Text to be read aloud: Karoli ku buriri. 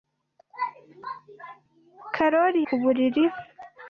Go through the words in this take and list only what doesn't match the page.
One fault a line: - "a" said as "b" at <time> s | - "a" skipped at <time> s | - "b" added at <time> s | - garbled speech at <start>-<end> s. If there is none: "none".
none